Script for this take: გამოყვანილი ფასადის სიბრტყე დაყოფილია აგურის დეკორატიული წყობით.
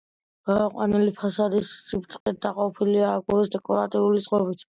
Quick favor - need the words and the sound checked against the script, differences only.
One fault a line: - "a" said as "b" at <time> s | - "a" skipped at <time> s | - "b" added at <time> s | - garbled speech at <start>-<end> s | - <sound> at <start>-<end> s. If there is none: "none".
- dropout at 2.2-2.3 s